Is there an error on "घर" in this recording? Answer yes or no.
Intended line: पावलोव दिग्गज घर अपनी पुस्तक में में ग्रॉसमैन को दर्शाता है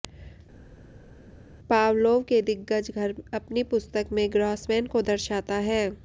no